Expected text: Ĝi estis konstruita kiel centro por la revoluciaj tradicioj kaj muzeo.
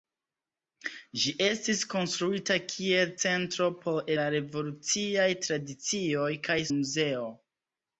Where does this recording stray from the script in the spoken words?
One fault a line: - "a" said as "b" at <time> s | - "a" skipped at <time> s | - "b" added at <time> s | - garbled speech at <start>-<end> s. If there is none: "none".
none